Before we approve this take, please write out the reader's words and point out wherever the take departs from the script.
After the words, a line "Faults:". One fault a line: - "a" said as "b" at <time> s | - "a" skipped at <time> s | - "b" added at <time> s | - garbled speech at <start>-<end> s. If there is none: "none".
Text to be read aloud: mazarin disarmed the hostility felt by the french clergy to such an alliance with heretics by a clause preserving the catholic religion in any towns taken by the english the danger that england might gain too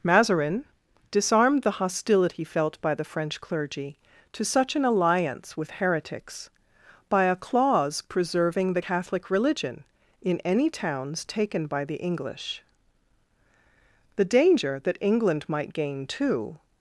mazarin disarmed the hostility felt by the french clergy to such an alliance with heretics by a clause preserving the catholic religion in any towns taken by the english the danger that england might gain too
Faults:
none